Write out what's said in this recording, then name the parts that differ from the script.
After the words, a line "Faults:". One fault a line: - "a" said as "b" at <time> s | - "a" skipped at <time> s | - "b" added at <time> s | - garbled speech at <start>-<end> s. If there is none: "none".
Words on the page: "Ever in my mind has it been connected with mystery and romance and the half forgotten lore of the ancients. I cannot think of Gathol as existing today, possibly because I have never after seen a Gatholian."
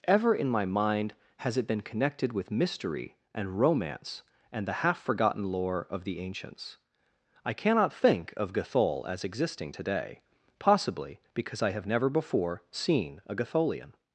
"Ever in my mind has it been connected with mystery and romance and the half forgotten lore of the ancients. I cannot think of Gathol as existing today, possibly because I have never before seen a Gatholian."
Faults:
- "after" said as "before" at 12.1 s